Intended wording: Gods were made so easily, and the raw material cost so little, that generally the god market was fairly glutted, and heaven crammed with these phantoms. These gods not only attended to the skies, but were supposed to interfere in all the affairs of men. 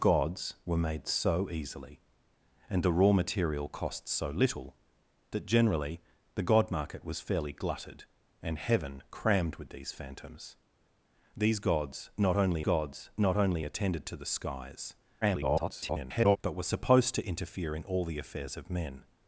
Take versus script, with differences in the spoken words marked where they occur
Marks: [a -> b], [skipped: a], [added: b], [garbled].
Gods were made so easily, and the raw material cost so little, that generally the god market was fairly glutted, and heaven crammed with these phantoms. These gods not only [added: gods not only] attended to the skies, [garbled] but were supposed to interfere in all the affairs of men.